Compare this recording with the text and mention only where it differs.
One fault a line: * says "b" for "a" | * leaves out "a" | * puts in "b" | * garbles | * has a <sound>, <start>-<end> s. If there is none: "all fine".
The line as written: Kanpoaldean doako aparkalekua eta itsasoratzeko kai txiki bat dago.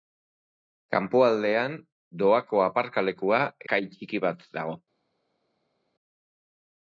* leaves out "eta itsasoratzeko"